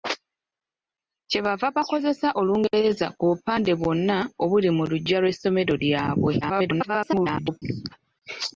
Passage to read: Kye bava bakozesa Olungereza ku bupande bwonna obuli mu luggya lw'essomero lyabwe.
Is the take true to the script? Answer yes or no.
no